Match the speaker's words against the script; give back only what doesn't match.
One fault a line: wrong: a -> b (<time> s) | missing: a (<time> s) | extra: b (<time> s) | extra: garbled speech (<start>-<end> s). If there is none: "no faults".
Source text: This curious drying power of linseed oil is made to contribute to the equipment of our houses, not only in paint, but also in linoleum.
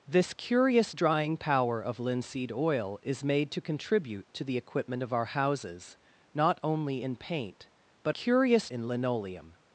wrong: also -> curious (8.1 s)